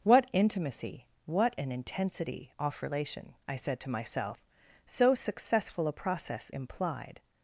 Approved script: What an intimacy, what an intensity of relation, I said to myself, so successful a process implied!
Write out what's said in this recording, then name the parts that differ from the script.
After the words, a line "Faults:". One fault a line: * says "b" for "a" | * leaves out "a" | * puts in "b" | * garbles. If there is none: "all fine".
What intimacy, what an intensity off relation, I said to myself, so successful a process implied!
Faults:
* leaves out "an"
* says "off" for "of"